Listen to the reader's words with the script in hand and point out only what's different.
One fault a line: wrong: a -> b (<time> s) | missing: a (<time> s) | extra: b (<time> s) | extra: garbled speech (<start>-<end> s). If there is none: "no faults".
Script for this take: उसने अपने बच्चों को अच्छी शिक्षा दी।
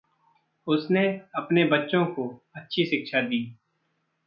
no faults